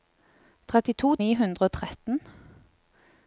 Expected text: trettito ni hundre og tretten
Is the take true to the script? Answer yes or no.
yes